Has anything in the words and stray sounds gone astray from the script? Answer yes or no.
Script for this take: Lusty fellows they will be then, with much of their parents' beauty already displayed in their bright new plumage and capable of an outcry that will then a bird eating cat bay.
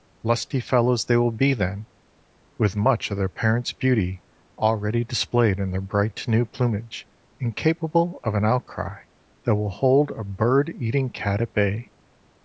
yes